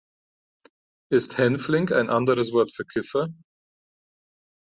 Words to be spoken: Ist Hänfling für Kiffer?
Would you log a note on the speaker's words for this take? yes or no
yes